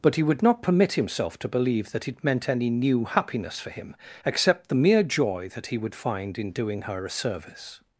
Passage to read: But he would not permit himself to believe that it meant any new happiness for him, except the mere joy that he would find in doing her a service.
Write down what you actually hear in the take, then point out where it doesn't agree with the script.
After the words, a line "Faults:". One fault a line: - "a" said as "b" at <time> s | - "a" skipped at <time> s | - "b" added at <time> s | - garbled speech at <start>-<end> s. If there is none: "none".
But he would not permit himself to believe that it meant any new happiness for him, except the mere joy that he would find in doing her a service.
Faults:
none